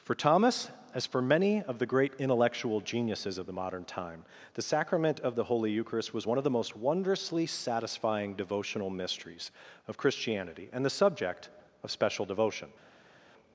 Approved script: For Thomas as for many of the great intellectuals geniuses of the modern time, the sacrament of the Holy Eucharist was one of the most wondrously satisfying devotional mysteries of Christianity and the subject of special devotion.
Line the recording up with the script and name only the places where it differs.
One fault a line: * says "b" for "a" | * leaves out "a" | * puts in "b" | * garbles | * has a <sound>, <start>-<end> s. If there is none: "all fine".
* says "intellectual" for "intellectuals"